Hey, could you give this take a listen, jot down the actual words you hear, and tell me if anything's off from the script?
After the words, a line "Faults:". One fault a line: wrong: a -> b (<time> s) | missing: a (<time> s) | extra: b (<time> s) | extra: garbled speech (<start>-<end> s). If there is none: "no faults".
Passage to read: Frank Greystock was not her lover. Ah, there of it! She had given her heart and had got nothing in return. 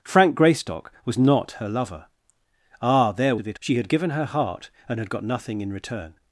Frank Greystock was not her lover. Ah, there of it! She had given her heart and had got nothing in return.
Faults:
no faults